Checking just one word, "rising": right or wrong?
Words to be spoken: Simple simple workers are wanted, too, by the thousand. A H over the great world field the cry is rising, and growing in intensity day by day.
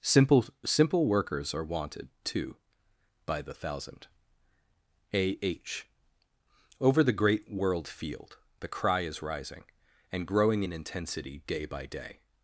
right